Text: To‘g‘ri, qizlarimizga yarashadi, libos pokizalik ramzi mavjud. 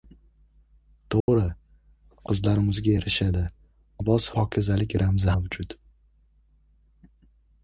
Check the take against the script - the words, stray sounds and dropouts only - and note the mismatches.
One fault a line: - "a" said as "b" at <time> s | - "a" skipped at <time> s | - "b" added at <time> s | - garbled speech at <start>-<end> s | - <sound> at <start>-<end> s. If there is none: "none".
- dropout at 1.2-1.3 s